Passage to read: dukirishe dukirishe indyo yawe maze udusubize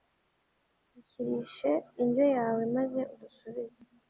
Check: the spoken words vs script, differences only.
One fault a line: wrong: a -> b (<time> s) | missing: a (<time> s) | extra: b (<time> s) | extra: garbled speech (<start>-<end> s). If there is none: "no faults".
missing: dukirishe (1.7 s)